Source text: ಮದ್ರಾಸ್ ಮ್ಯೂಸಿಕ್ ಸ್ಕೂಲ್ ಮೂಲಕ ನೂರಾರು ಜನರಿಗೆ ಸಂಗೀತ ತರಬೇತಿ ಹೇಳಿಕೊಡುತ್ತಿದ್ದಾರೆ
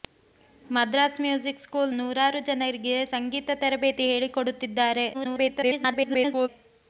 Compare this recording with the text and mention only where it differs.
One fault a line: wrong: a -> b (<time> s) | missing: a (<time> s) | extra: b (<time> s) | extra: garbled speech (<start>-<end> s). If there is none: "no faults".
missing: ಮೂಲಕ (1.9 s)
extra: garbled speech (5.1-6.5 s)